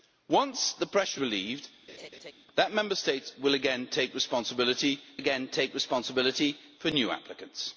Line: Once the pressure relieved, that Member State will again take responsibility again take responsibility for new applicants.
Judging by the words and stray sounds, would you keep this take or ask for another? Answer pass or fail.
fail